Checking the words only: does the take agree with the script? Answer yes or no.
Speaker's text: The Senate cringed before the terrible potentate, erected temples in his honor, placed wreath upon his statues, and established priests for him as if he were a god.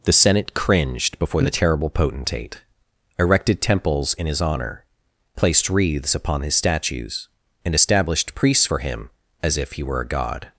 no